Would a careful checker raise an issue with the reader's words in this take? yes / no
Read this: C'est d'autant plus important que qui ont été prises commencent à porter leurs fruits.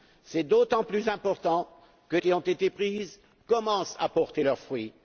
no